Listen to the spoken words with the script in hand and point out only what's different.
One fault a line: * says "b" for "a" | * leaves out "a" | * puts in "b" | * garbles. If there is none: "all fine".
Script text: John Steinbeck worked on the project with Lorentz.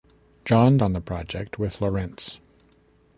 * leaves out "Steinbeck worked"